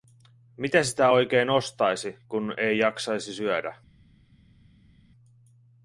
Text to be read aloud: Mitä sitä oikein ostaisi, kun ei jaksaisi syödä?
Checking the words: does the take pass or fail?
pass